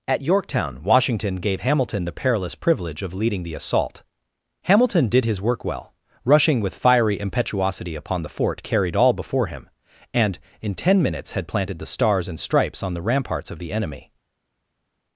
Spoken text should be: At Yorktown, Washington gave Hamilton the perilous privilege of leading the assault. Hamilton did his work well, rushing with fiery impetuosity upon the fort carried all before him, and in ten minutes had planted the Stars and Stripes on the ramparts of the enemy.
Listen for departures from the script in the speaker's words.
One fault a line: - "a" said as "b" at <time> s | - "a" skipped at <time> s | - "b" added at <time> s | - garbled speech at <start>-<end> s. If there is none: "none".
none